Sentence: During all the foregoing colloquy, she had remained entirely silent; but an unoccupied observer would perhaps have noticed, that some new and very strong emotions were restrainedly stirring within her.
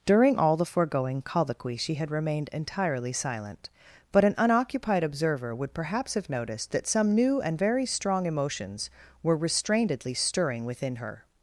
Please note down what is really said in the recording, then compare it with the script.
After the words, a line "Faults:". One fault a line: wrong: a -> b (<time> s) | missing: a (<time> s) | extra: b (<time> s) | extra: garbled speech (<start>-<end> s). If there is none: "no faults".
During all the foregoing colloquy, she had remained entirely silent; but an unoccupied observer would perhaps have noticed, that some new and very strong emotions were restrainedly stirring within her.
Faults:
no faults